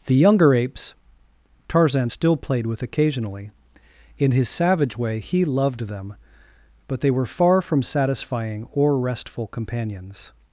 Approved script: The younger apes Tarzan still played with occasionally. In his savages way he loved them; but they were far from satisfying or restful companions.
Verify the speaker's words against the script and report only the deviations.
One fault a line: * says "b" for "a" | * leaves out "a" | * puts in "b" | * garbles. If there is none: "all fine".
* says "savage" for "savages"